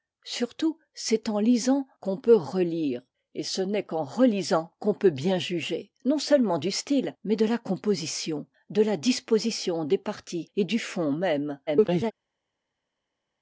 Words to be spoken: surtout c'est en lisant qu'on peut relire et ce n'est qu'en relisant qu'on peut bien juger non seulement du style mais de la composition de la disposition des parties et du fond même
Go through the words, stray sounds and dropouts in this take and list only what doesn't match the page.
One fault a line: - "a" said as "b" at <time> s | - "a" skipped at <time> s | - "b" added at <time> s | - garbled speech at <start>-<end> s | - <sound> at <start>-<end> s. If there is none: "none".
- garbled speech at 11.7-12.1 s